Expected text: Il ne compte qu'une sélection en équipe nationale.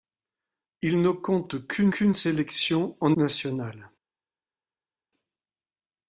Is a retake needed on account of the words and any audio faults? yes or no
yes